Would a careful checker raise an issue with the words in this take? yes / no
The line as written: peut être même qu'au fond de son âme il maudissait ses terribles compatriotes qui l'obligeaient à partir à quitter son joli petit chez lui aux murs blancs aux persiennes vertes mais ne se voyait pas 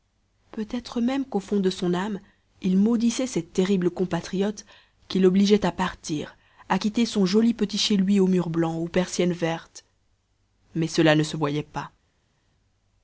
yes